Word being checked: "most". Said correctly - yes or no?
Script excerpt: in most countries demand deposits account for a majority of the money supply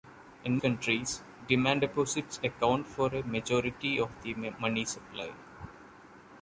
no